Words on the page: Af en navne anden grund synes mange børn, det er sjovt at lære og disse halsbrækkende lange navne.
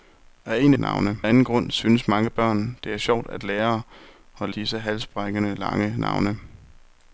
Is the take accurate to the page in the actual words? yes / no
yes